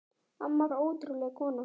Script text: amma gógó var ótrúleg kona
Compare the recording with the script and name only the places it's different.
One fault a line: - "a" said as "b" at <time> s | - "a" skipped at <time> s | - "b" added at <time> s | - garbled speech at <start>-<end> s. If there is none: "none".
- "gógó var" skipped at 0.7 s